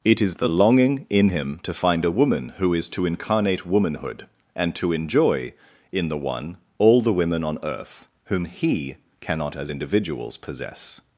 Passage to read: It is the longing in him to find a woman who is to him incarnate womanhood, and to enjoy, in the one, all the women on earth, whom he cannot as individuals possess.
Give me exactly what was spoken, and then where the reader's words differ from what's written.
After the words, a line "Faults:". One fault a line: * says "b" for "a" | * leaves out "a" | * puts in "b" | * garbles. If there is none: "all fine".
It is the longing in him to find a woman who is to incarnate womanhood, and to enjoy, in the one, all the women on earth, whom he cannot as individuals possess.
Faults:
* leaves out "him"